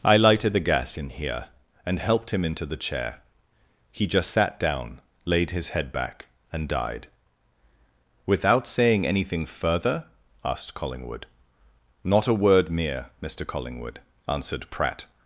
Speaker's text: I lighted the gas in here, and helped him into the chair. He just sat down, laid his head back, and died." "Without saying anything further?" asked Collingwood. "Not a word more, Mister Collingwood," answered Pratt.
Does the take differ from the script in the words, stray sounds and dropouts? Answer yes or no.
yes